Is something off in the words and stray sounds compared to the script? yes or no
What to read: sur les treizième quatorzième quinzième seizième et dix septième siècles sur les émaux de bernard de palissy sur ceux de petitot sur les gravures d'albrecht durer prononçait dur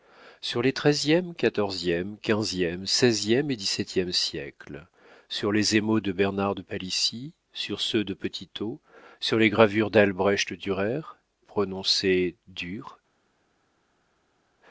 no